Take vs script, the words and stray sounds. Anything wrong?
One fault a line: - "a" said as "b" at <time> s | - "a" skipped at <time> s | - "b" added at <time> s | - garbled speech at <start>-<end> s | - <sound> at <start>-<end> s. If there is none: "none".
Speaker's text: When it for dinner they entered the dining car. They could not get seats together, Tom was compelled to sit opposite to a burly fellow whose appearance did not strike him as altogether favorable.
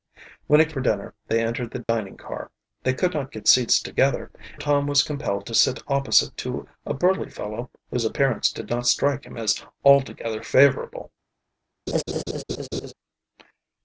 - dropout at 1.8-1.9 s
- laugh at 11.9-12.9 s